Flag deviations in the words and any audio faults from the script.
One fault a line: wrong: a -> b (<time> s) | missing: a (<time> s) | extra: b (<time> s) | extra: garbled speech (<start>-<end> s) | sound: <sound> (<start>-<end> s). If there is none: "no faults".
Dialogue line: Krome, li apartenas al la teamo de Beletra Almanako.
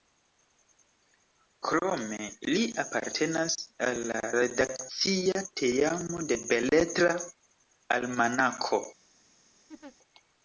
extra: redakcia (4.4 s)
sound: laugh (9.7-10.0 s)